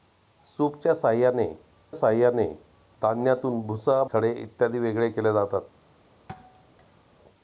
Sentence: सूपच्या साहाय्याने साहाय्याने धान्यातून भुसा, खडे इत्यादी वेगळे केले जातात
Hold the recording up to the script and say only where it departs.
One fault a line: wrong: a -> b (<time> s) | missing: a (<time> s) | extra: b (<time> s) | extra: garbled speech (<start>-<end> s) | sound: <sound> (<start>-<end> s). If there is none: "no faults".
sound: thud (6.3-7.0 s)